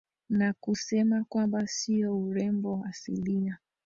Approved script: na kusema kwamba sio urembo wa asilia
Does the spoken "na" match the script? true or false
true